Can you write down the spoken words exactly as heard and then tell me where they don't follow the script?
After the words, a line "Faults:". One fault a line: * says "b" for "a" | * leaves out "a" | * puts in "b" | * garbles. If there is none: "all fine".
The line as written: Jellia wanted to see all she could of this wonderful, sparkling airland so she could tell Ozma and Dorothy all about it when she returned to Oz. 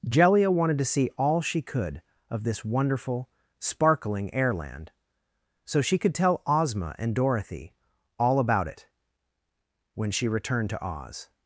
Jellia wanted to see all she could of this wonderful, sparkling airland so she could tell Ozma and Dorothy all about it when she returned to Oz.
Faults:
all fine